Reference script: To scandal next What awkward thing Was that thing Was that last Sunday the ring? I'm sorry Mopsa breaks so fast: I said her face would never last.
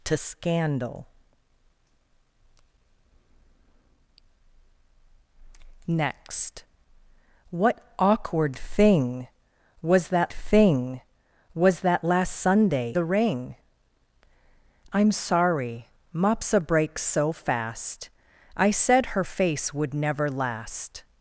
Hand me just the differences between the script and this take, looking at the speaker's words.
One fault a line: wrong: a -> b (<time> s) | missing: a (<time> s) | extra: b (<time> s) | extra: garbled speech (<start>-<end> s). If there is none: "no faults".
no faults